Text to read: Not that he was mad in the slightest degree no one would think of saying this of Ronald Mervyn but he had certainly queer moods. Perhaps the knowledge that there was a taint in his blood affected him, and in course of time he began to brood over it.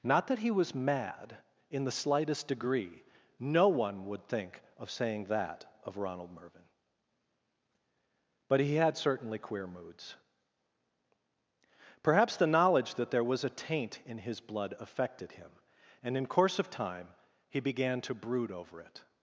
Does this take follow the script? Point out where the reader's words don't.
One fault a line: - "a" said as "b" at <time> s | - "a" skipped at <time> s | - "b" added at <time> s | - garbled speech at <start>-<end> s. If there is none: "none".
- "this" said as "that" at 5.2 s